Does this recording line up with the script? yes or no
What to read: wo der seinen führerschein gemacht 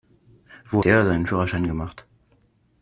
yes